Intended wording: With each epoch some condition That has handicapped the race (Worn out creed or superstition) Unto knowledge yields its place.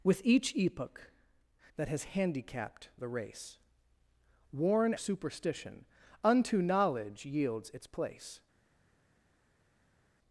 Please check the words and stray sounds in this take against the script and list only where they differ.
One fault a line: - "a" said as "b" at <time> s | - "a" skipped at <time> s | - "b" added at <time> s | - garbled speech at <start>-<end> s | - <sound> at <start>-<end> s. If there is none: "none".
- "some condition" skipped at 1.1 s
- "out creed or" skipped at 4.9 s